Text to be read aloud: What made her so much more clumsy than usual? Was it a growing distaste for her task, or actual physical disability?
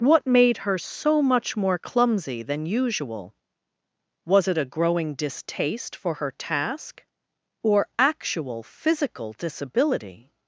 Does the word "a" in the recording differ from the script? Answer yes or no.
no